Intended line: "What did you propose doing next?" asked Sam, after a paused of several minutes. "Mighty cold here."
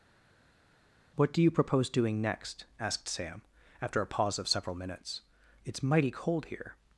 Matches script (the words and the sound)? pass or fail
fail